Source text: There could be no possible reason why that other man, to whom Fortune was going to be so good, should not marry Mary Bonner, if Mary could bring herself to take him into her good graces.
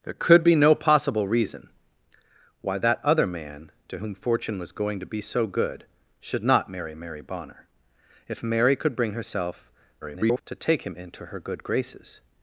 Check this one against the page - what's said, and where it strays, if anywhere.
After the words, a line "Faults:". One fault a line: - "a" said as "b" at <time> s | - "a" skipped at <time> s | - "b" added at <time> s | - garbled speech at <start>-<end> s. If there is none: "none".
There could be no possible reason why that other man, to whom Fortune was going to be so good, should not marry Mary Bonner, if Mary could bring herself [garbled] to take him into her good graces.
Faults:
- garbled speech at 10.0-10.4 s